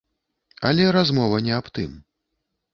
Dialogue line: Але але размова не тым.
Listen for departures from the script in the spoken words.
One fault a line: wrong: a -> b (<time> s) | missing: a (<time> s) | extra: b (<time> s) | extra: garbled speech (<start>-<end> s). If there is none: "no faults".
missing: але (0.9 s)
extra: аб (1.6 s)